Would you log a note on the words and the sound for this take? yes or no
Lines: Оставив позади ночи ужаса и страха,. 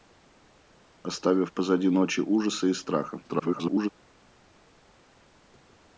yes